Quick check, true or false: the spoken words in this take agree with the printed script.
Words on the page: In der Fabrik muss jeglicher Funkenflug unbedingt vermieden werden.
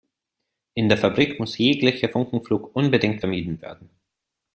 true